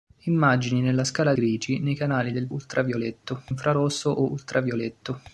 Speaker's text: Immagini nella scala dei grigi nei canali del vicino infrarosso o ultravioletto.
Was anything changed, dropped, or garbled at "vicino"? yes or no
yes